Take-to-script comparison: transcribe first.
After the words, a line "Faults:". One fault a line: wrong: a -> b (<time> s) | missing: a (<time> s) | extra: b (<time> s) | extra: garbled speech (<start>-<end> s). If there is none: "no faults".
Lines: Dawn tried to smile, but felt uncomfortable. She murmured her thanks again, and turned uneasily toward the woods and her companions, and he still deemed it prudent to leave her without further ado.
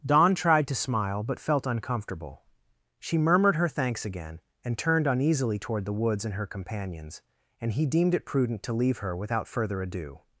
Dawn tried to smile, but felt uncomfortable. She murmured her thanks again, and turned uneasily toward the woods and her companions, and he deemed it prudent to leave her without further ado.
Faults:
missing: still (7.8 s)